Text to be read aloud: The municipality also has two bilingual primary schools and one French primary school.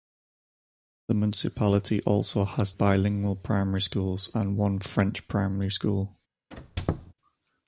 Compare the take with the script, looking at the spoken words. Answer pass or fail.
fail